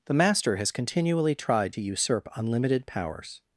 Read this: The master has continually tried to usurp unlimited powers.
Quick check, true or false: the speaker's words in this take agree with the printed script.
true